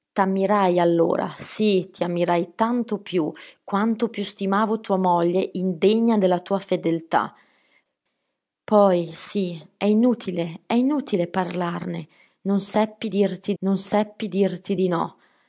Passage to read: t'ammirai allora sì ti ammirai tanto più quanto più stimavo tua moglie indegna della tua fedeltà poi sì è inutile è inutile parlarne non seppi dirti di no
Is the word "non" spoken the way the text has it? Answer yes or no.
yes